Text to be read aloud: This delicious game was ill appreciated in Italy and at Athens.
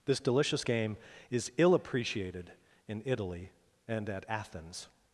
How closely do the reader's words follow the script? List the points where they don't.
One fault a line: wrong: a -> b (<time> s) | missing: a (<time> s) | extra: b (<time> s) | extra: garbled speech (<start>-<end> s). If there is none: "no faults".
wrong: was -> is (1.3 s)